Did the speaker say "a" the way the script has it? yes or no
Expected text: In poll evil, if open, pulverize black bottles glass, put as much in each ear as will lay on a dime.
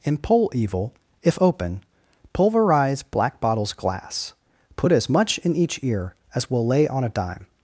yes